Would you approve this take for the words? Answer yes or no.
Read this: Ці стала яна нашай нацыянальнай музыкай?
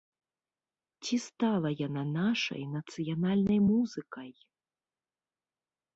yes